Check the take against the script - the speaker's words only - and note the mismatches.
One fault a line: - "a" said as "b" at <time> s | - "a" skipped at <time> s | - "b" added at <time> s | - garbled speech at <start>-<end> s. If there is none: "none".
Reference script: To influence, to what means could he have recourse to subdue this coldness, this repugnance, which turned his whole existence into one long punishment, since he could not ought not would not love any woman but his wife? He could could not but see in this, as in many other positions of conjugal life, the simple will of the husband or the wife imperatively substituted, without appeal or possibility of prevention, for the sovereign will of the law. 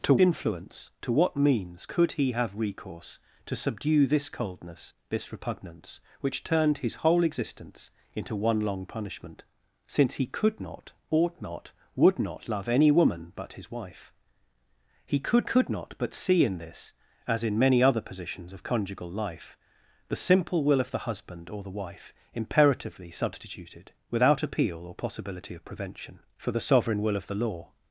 none